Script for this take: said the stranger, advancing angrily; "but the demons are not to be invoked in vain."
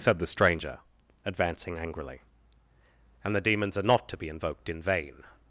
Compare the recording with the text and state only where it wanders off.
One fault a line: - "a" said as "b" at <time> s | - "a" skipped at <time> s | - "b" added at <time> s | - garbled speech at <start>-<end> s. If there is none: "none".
- "but" said as "and" at 3.2 s